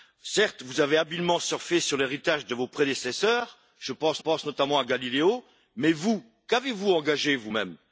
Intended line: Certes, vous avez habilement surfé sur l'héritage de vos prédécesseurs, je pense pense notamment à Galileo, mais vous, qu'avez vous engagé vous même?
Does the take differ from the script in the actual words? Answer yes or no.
no